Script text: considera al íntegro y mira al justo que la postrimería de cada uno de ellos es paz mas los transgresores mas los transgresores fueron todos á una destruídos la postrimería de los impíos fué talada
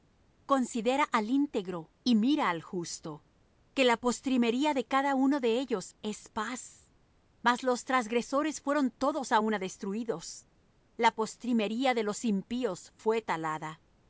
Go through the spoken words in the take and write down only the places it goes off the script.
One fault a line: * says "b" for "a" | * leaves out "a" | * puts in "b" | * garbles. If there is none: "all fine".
* leaves out "mas los transgresores"